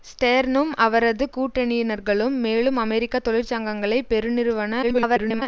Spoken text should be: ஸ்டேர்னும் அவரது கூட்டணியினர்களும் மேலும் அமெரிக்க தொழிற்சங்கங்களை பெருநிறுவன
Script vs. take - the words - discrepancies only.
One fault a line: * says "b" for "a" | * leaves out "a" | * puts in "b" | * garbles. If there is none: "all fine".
* garbles